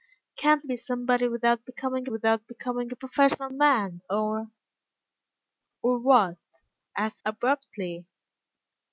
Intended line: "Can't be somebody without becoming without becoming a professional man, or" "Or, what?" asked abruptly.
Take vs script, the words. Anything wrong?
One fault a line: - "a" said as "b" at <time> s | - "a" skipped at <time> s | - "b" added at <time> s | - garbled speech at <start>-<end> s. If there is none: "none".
none